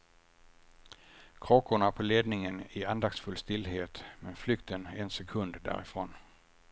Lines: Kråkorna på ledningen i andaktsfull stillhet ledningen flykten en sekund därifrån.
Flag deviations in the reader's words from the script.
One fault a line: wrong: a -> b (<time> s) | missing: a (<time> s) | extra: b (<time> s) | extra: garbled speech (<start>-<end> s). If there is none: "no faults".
wrong: ledningen -> men (4.2 s)